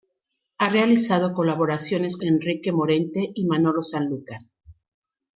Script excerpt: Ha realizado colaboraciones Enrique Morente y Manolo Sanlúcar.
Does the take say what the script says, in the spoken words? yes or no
yes